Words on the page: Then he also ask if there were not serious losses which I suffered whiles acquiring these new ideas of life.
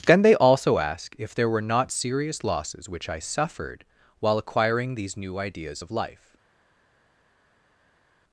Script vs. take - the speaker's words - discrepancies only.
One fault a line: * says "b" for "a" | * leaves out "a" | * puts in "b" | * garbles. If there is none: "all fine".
* says "they" for "he"
* says "while" for "whiles"